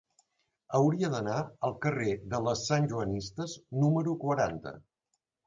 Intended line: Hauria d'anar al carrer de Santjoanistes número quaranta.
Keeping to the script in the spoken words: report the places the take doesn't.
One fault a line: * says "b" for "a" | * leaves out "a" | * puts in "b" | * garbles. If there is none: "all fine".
* puts in "les"